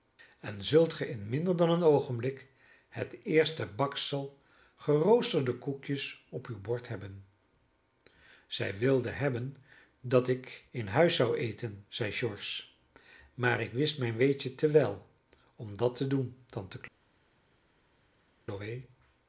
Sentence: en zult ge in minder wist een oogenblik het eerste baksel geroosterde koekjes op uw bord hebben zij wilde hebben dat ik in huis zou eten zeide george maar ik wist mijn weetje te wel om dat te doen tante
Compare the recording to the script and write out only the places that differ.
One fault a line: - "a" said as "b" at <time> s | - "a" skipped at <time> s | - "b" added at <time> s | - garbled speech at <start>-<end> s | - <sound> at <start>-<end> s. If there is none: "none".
- "wist" said as "dan" at 1.6 s